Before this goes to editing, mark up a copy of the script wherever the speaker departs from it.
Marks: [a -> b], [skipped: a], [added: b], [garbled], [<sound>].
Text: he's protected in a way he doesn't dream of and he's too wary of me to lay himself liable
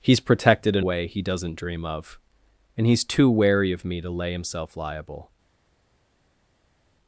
he's protected in [skipped: a] way he doesn't dream of and he's too wary of me to lay himself liable